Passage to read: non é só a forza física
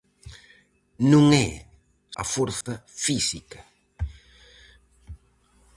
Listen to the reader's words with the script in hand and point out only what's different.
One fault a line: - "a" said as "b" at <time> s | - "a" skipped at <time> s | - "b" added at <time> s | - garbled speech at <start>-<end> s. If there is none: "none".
- "só" skipped at 1.5 s